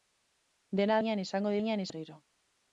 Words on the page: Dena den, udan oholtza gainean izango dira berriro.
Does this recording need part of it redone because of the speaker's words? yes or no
yes